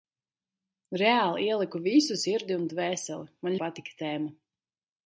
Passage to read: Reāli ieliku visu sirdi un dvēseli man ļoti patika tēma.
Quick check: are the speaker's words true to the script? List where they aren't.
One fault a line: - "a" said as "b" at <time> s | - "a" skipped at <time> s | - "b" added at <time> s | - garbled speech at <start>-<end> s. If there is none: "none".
- "ļoti" skipped at 3.6 s